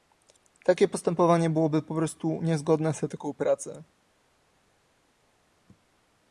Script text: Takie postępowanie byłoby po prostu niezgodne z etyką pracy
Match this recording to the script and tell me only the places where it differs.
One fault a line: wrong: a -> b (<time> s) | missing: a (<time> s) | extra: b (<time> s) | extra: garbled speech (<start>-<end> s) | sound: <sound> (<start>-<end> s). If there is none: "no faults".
no faults